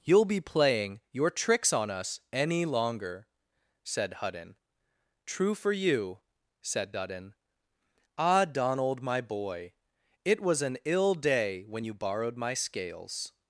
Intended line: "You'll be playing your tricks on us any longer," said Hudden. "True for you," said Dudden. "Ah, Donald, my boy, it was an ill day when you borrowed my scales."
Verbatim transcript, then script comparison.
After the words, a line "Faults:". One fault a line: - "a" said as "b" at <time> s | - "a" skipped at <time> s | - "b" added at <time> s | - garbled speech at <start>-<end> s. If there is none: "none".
"You'll be playing your tricks on us any longer," said Hudden. "True for you," said Dudden. "Ah, Donald, my boy, it was an ill day when you borrowed my scales."
Faults:
none